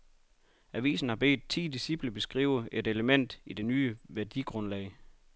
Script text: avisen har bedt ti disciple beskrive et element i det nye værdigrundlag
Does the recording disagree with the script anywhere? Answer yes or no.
no